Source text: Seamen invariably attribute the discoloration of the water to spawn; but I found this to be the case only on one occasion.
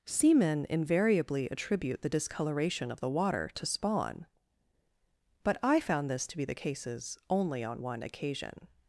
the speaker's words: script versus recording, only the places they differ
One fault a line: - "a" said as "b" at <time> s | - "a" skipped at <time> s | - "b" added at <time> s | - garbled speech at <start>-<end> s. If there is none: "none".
- "case" said as "cases" at 6.5 s